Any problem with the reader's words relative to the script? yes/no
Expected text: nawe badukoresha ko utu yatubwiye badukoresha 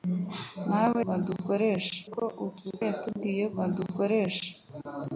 no